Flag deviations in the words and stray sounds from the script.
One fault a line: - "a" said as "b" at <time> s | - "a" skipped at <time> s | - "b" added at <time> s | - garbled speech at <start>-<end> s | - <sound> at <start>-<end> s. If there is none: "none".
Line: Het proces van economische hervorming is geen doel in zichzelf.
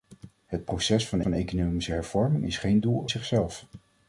- "van" added at 1.2 s
- "in" skipped at 3.1 s